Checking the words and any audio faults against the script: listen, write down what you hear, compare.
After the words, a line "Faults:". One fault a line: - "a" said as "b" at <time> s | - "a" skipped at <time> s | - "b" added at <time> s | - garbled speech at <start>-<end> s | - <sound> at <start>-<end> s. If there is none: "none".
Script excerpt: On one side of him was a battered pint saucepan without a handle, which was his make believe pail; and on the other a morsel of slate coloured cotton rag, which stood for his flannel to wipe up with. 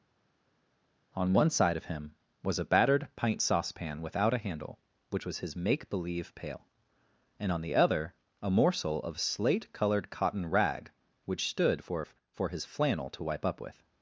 On one side of him was a battered pint saucepan without a handle, which was his make believe pail; and on the other a morsel of slate coloured cotton rag, which stood for for his flannel to wipe up with.
Faults:
- "for" added at 12.3 s